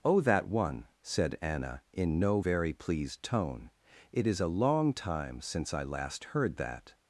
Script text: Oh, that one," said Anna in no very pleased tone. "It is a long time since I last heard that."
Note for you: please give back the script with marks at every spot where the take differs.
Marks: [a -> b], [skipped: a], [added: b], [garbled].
Oh, that one," said Anna in no very pleased tone. "It is a long time since I last heard that."